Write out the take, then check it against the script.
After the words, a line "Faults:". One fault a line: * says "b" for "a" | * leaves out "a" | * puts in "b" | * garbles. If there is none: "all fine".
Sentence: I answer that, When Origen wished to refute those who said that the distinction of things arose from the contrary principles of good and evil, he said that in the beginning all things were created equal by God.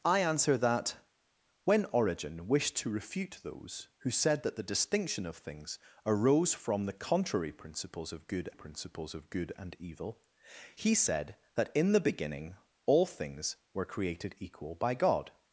I answer that, When Origen wished to refute those who said that the distinction of things arose from the contrary principles of good principles of good and evil, he said that in the beginning all things were created equal by God.
Faults:
* puts in "principles of good"